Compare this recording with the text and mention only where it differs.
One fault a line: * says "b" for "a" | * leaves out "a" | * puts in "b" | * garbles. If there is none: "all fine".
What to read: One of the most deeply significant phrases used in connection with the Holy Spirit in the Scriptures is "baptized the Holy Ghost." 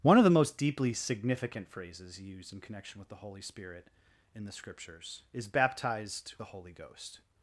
all fine